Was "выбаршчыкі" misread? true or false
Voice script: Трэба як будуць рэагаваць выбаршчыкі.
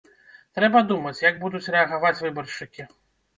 false